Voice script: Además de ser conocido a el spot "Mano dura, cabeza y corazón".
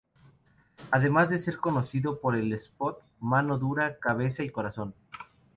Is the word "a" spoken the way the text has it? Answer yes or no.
no